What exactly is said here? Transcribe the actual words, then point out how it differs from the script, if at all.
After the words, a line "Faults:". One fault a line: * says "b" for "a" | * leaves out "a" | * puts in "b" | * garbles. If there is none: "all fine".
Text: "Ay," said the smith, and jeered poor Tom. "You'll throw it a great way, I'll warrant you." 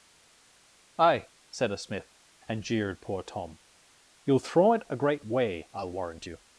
"Ay," said a smith, and jeered poor Tom. "You'll throw it a great way, I'll warrant you."
Faults:
* says "a" for "the"